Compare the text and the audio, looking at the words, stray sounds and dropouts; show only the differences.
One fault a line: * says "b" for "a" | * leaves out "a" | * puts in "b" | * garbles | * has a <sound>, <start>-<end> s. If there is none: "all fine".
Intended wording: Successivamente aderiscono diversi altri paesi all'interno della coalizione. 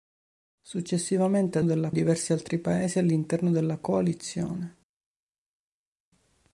* says "della" for "aderiscono"